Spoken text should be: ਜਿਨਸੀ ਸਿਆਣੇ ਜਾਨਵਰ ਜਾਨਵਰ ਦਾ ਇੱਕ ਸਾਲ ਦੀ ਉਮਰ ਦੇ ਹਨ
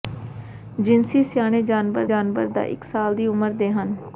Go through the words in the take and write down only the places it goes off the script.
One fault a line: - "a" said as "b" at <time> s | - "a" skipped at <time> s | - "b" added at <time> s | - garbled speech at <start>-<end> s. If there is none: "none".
none